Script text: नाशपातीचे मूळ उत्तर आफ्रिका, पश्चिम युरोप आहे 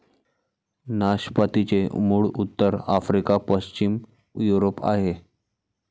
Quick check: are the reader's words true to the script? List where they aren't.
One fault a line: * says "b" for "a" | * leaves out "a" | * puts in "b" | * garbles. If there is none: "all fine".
all fine